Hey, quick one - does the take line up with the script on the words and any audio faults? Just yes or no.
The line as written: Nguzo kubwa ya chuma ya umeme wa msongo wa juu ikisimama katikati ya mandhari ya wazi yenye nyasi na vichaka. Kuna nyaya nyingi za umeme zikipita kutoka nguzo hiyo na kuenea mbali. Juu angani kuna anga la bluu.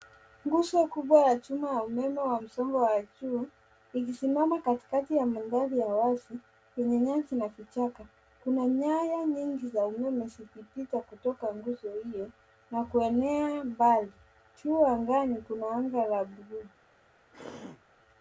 no